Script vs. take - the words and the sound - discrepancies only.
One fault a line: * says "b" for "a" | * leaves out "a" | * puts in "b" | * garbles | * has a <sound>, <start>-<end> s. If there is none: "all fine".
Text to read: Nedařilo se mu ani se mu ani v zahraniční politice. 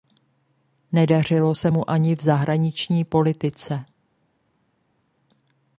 * leaves out "se mu ani"